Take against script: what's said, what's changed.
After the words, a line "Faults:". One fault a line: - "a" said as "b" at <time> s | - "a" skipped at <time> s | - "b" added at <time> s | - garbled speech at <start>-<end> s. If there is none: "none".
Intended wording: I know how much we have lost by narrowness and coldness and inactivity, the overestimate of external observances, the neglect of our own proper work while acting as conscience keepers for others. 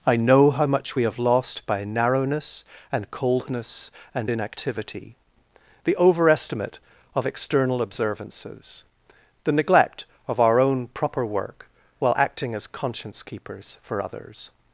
I know how much we have lost by narrowness and coldness and inactivity, the overestimate of external observances, the neglect of our own proper work while acting as conscience keepers for others.
Faults:
none